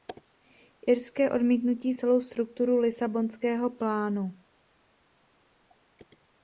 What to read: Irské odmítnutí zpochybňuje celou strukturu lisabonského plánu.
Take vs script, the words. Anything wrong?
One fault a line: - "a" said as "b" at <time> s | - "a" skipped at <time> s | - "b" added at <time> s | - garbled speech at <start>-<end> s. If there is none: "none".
- "zpochybňuje" skipped at 1.9 s